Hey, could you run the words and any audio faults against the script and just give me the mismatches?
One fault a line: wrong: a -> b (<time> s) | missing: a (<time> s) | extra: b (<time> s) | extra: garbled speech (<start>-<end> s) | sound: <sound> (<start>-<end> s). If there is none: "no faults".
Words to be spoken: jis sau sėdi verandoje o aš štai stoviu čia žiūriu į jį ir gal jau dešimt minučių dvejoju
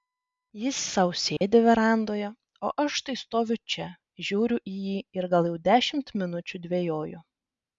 sound: dropout (1.4-1.4 s)